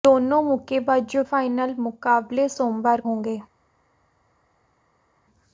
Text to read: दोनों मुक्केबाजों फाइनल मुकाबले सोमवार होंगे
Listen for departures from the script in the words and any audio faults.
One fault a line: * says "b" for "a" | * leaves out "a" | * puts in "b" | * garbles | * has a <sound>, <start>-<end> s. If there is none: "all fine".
all fine